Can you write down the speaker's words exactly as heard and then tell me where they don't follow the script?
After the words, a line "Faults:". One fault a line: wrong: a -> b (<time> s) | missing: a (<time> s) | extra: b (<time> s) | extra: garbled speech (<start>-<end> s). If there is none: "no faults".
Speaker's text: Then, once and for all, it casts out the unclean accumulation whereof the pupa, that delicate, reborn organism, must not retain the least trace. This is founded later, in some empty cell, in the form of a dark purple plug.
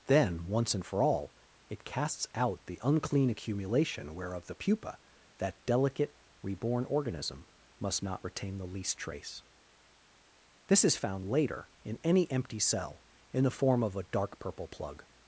Then, once and for all, it casts out the unclean accumulation whereof the pupa, that delicate, reborn organism, must not retain the least trace. This is found later, in any empty cell, in the form of a dark purple plug.
Faults:
wrong: founded -> found (10.9 s)
wrong: some -> any (12.0 s)